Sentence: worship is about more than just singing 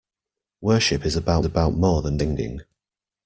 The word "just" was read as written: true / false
false